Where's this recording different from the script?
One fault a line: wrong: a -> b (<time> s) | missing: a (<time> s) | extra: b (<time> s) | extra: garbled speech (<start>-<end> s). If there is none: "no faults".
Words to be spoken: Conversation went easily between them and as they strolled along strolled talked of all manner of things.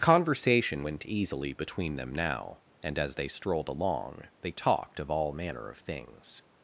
extra: now (2.1 s)
wrong: strolled -> they (4.4 s)